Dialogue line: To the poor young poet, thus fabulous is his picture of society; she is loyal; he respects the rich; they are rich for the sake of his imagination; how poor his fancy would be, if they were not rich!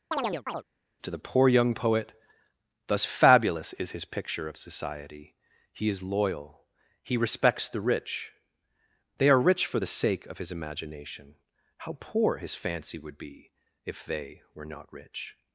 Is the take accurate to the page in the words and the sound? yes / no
no